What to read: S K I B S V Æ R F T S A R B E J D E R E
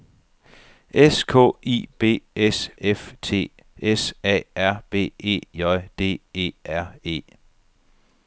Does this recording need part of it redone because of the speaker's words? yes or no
yes